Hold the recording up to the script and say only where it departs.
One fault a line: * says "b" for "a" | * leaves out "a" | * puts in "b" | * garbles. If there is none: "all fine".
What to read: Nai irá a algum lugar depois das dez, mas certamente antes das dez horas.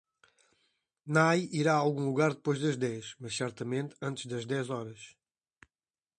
all fine